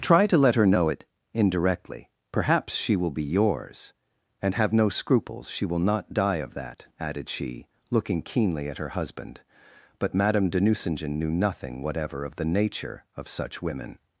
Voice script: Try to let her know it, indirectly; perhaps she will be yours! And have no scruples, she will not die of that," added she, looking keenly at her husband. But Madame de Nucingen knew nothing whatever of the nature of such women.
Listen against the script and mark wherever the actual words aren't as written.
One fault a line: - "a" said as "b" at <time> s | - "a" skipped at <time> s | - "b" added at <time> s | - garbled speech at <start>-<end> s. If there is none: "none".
none